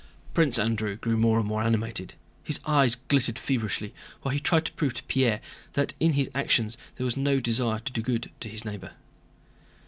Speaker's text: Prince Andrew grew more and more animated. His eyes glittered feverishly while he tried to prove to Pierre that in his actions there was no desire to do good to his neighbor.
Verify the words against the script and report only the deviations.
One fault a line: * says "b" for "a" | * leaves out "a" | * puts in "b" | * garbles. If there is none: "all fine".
all fine